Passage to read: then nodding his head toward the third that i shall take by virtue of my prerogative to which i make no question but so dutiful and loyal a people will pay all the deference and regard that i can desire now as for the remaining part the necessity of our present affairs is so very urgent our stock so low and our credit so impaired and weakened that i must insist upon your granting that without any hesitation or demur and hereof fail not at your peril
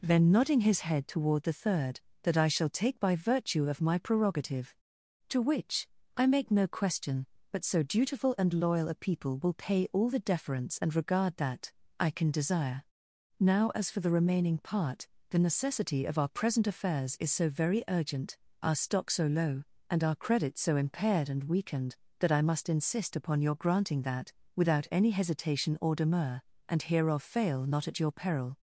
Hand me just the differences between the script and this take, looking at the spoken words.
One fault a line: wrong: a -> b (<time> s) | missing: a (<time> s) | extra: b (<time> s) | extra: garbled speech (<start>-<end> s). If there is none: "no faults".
no faults